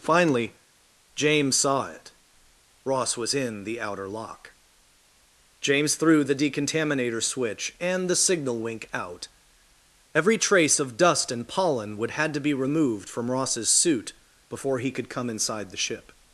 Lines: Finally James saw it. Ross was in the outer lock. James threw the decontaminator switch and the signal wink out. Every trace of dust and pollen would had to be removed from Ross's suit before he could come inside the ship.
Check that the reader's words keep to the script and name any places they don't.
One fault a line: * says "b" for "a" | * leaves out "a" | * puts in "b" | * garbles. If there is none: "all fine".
all fine